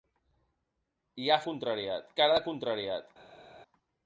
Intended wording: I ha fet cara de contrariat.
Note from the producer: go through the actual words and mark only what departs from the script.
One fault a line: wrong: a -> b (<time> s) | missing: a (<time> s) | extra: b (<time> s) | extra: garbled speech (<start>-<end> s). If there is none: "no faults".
wrong: fet -> contrariat (1.5 s)